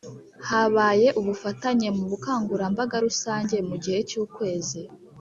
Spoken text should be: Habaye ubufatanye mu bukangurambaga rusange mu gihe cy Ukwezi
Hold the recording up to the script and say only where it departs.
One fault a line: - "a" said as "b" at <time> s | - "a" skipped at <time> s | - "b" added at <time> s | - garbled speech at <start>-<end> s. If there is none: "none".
none